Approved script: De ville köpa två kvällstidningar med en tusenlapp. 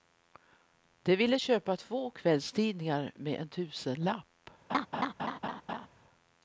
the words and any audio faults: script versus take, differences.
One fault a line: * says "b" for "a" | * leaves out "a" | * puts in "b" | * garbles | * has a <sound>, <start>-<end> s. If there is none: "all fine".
* has a laugh, 4.7-5.9 s